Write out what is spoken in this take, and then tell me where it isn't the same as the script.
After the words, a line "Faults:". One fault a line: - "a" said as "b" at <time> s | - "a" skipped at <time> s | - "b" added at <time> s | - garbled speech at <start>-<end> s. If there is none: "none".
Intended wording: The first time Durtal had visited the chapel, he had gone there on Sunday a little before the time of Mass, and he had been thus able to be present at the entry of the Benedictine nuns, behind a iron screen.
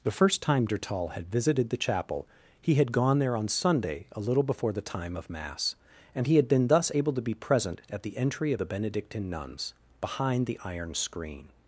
The first time Durtal had visited the chapel, he had gone there on Sunday a little before the time of Mass, and he had been thus able to be present at the entry of the Benedictine nuns, behind the iron screen.
Faults:
- "a" said as "the" at 10.5 s